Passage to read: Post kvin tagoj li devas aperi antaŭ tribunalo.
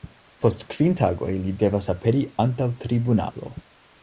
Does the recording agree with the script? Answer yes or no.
yes